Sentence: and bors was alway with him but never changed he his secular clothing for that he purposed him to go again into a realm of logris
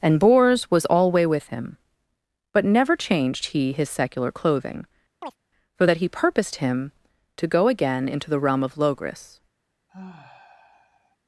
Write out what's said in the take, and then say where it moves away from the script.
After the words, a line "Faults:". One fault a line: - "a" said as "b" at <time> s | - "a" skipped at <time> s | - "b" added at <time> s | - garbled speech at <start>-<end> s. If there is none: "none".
and bors was alway with him but never changed he his secular clothing for that he purposed him to go again into the realm of logris
Faults:
- "a" said as "the" at 8.3 s